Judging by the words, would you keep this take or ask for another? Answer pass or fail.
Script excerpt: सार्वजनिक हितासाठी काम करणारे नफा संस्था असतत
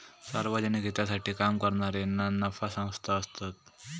fail